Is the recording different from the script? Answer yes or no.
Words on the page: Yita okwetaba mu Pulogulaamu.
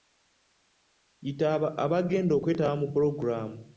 yes